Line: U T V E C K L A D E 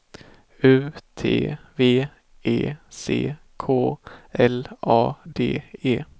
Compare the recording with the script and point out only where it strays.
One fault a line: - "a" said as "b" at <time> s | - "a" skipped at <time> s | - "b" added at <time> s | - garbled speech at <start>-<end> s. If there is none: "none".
none